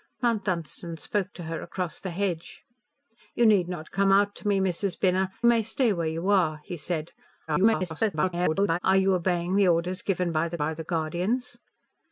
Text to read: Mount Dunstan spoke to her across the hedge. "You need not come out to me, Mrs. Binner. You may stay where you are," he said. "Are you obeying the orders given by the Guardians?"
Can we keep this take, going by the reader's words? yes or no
no